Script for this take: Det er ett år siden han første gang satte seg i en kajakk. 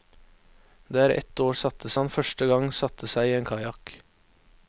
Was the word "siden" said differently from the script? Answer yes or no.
yes